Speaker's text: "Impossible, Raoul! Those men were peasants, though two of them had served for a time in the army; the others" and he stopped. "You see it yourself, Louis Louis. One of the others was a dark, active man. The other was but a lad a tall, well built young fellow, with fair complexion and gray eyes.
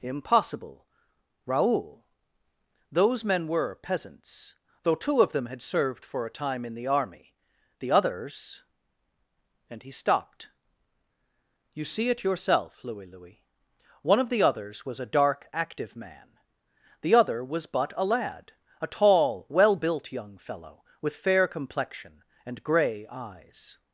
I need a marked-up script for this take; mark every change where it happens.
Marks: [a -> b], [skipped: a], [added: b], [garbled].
"Impossible, Raoul! Those men were peasants, though two of them had served for a time in the army; the others" and he stopped. "You see it yourself, Louis Louis. One of the others was a dark, active man. The other was but a lad a tall, well built young fellow, with fair complexion and gray eyes.